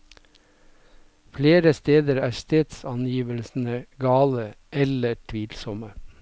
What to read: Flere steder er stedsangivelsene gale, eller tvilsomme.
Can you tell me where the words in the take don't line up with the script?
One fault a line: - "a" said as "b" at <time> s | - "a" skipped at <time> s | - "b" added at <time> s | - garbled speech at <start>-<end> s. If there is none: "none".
none